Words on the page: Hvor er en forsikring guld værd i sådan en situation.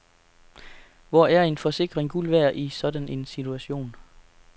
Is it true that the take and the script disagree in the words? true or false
false